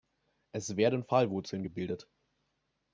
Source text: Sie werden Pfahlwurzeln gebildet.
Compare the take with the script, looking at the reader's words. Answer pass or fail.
fail